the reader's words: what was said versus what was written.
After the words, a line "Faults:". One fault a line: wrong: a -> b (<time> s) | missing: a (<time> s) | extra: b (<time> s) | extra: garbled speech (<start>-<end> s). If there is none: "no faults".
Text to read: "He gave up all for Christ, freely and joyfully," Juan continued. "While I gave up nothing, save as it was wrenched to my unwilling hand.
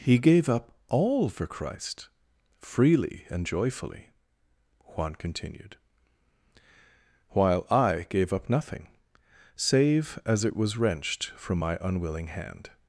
"He gave up all for Christ, freely and joyfully," Juan continued. "While I gave up nothing, save as it was wrenched from my unwilling hand.
Faults:
wrong: to -> from (11.4 s)